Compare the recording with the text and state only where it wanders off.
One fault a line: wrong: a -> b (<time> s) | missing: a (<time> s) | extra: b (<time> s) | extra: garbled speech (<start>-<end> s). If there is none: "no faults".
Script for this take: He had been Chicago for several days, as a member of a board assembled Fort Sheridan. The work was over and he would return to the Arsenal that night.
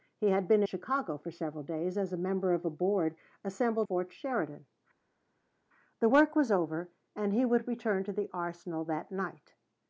no faults